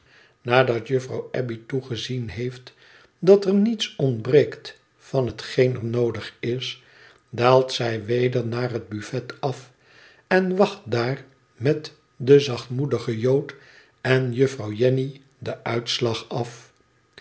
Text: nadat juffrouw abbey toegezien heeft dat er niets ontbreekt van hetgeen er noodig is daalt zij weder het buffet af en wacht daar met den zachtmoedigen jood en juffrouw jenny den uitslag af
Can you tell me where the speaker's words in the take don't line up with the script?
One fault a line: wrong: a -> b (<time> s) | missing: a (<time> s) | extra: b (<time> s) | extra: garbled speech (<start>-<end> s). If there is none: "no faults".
extra: naar (8.5 s)